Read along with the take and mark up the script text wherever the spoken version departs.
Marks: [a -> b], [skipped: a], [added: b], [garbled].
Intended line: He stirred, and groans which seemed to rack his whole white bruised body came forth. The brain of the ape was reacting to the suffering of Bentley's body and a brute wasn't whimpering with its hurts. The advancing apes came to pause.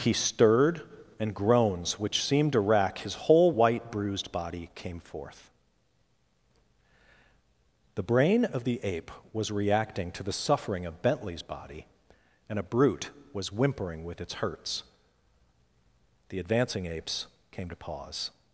He stirred, and groans which seemed to rack his whole white bruised body came forth. The brain of the ape was reacting to the suffering of Bentley's body and a brute [wasn't -> was] whimpering with its hurts. The advancing apes came to pause.